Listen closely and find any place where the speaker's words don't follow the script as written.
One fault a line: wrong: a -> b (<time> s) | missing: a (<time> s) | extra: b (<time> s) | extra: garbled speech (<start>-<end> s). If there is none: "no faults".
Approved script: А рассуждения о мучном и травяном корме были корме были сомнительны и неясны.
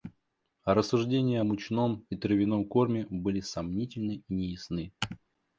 missing: корме были (3.4 s)